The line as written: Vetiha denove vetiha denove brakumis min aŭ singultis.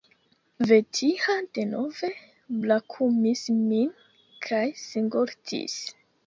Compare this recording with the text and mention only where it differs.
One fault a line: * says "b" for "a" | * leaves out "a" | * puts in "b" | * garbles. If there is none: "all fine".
* leaves out "vetiha denove"
* says "kaj" for "aŭ"